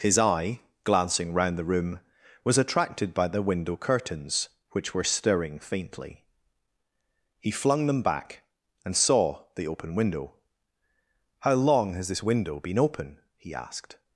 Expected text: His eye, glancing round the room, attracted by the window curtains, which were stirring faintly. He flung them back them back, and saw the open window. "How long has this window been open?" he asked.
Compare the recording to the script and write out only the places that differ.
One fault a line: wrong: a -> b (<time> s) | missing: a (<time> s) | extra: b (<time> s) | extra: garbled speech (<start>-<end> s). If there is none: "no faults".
extra: was (2.4 s)
missing: them back (8.4 s)